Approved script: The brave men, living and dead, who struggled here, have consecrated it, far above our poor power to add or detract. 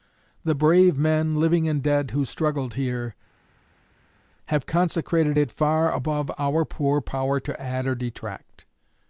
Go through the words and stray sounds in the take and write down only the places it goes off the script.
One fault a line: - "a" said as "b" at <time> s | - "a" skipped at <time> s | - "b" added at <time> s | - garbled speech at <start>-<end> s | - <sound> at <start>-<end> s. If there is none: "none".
none